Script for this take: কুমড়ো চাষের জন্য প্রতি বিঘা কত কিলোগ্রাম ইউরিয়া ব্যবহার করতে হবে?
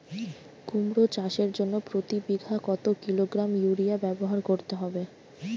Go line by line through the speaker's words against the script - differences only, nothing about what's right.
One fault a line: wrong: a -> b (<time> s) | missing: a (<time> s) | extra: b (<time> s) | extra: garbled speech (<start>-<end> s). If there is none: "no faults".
no faults